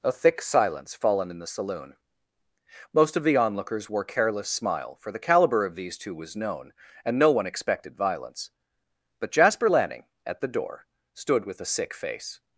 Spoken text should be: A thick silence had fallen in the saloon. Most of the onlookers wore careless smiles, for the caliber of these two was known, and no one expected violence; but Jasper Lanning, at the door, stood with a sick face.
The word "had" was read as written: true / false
false